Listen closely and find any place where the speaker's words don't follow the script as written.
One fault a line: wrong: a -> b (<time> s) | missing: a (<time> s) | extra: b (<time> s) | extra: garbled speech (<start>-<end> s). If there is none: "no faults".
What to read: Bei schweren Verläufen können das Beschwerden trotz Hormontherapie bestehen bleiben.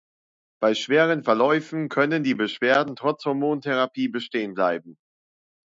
wrong: das -> die (2.2 s)